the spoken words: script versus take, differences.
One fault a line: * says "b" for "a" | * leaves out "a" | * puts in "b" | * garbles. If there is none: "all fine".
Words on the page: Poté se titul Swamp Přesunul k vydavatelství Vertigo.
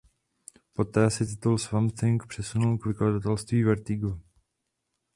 * puts in "Thing"